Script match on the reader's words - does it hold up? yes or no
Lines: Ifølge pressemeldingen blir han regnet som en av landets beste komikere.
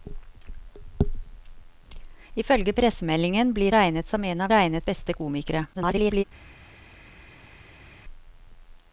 no